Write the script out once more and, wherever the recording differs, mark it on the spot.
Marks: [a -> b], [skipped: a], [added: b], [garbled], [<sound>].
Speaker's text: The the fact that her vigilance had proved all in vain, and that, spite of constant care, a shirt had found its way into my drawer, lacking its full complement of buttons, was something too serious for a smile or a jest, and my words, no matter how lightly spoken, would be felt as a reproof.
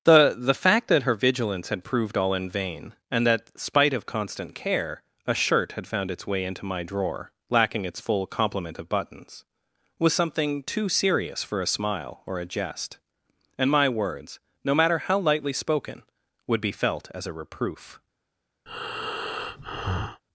The the fact that her vigilance had proved all in vain, and that, spite of constant care, a shirt had found its way into my drawer, lacking its full complement of buttons, was something too serious for a smile or a jest, and my words, no matter how lightly spoken, would be felt as a reproof. [breath]